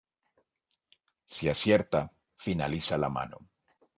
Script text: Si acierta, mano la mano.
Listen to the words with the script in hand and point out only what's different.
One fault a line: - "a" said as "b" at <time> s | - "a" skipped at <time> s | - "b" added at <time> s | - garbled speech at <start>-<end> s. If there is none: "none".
- "mano" said as "finaliza" at 2.4 s